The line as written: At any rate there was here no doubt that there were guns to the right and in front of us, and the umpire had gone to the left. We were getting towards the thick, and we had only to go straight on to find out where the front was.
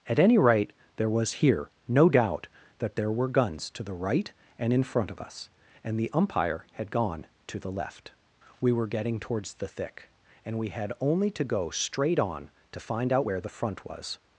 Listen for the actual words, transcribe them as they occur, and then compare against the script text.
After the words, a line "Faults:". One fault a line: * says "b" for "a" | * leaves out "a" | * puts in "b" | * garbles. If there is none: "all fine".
At any rate there was here no doubt that there were guns to the right and in front of us, and the umpire had gone to the left. We were getting towards the thick, and we had only to go straight on to find out where the front was.
Faults:
all fine